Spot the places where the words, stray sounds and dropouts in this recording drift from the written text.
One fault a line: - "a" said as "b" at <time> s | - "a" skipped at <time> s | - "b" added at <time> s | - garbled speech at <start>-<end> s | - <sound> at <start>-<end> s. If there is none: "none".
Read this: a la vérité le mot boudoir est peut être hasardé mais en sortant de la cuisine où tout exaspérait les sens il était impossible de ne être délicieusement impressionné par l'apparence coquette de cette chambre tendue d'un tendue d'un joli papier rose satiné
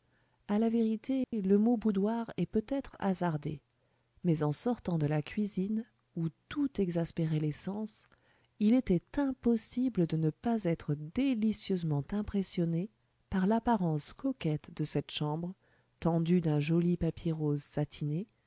- dropout at 1.2-1.3 s
- "pas" added at 10.3 s
- "tendue d'un" skipped at 16.6 s